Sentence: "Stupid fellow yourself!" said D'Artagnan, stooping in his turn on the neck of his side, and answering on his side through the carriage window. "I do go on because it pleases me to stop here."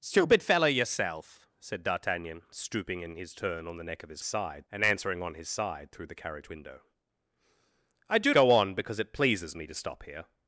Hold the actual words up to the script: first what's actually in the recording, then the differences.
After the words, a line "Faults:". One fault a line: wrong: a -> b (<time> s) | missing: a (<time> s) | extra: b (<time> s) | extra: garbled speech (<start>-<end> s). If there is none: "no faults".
"Stupid fellow yourself!" said D'Artagnan, stooping in his turn on the neck of his side, and answering on his side through the carriage window. "I do go on because it pleases me to stop here."
Faults:
no faults